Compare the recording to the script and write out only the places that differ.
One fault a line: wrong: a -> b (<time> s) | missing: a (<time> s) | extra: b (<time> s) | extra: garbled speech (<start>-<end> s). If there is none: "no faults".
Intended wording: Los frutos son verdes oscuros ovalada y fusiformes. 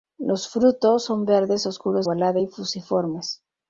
no faults